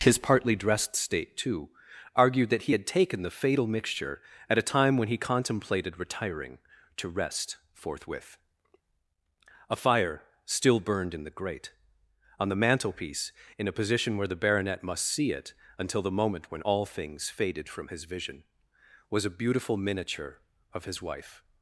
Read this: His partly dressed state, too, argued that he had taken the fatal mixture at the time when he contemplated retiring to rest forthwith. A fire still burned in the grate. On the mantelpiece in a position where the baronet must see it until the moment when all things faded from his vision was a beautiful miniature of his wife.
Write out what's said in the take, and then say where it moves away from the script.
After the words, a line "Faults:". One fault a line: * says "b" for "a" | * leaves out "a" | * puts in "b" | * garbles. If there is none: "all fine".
His partly dressed state, too, argued that he had taken the fatal mixture at a time when he contemplated retiring to rest forthwith. A fire still burned in the grate. On the mantelpiece in a position where the baronet must see it until the moment when all things faded from his vision was a beautiful miniature of his wife.
Faults:
* says "a" for "the"